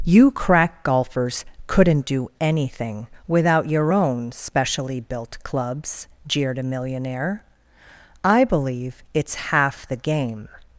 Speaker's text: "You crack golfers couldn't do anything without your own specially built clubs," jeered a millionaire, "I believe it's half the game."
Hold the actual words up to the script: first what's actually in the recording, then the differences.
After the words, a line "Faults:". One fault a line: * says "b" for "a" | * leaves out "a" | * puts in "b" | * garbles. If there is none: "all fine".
"You crack golfers couldn't do anything without your own specially built clubs," jeered a millionaire, "I believe it's half the game."
Faults:
all fine